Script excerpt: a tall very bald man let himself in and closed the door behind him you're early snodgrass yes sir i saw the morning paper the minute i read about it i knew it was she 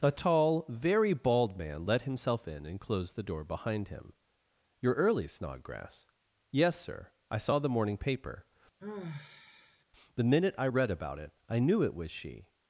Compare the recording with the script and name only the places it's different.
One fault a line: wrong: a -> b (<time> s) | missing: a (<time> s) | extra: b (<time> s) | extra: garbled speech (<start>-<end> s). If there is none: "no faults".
no faults